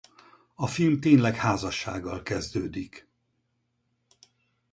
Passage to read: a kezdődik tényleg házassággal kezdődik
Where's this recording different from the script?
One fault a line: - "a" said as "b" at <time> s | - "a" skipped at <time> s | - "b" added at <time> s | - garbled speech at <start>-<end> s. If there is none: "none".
- "kezdődik" said as "film" at 0.7 s